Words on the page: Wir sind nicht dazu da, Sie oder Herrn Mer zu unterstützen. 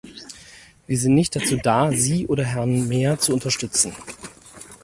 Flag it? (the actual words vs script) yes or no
no